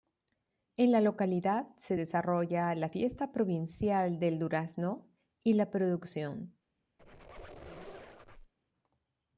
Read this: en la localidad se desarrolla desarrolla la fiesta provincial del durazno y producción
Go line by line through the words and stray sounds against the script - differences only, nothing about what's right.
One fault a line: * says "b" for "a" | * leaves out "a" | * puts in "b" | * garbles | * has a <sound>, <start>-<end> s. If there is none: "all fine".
* leaves out "desarrolla"
* puts in "la"
* has a squeak, 7.0-8.5 s